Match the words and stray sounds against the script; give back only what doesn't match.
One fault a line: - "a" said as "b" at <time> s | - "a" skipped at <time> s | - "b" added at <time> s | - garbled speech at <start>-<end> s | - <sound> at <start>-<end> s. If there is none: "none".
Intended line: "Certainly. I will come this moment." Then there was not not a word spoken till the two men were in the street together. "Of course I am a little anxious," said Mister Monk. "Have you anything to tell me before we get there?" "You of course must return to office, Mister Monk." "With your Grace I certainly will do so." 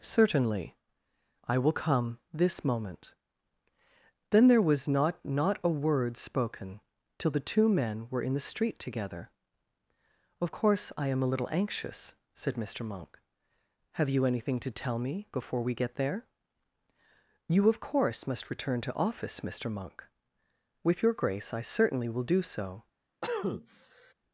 - cough at 23.2-24.1 s